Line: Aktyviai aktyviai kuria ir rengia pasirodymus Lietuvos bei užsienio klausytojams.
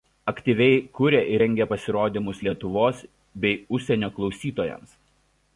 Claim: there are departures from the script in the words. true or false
true